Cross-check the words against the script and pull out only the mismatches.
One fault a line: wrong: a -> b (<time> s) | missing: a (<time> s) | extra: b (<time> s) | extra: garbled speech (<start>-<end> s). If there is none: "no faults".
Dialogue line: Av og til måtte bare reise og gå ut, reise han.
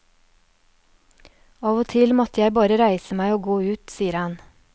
extra: jeg (2.4 s)
extra: meg (3.2 s)
wrong: reise -> sier (3.9 s)